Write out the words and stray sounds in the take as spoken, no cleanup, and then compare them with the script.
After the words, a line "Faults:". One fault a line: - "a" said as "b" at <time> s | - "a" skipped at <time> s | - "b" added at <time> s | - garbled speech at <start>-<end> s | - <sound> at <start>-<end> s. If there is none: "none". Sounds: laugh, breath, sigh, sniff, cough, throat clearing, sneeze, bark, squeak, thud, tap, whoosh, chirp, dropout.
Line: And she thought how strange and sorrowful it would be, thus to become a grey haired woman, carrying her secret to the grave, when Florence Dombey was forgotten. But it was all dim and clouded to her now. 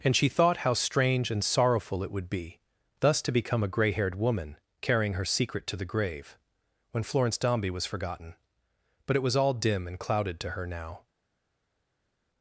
And she thought how strange and sorrowful it would be, thus to become a grey haired woman, carrying her secret to the grave, when Florence Dombey was forgotten. But it was all dim and clouded to her now.
Faults:
none